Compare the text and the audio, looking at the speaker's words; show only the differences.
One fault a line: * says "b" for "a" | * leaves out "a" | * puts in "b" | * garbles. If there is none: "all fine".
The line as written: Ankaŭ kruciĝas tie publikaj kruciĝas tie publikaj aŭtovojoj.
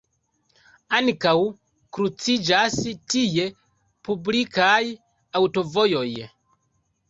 * leaves out "kruciĝas tie publikaj"